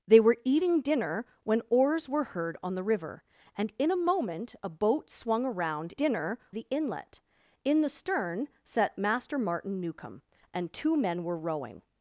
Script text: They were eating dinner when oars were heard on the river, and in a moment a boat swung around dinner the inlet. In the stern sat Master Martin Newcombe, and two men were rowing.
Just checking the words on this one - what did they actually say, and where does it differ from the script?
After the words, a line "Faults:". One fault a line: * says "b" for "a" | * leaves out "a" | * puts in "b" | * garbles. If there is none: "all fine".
They were eating dinner when oars were heard on the river, and in a moment a boat swung around dinner the inlet. In the stern sat Master Martin Newcombe, and two men were rowing.
Faults:
all fine